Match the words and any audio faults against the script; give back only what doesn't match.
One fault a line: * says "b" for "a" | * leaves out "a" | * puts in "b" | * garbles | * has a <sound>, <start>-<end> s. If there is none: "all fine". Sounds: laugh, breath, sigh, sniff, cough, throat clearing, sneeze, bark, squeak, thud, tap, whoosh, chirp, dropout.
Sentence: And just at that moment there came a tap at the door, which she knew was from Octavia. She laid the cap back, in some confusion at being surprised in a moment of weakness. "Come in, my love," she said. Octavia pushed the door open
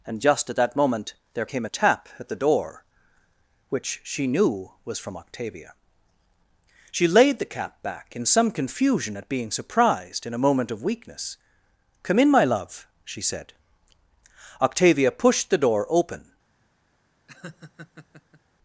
* has a laugh, 17.3-18.4 s